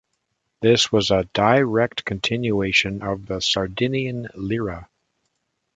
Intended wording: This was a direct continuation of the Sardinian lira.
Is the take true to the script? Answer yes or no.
yes